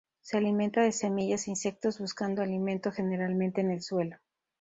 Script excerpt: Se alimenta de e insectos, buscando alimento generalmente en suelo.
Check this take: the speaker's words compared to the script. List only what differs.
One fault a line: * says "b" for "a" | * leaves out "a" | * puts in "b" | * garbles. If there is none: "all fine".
* puts in "semillas"
* puts in "el"